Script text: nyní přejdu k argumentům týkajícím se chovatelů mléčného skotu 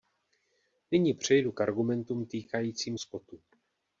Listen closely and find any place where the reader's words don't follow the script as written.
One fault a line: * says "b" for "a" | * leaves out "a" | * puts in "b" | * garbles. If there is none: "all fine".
* leaves out "se chovatelů mléčného"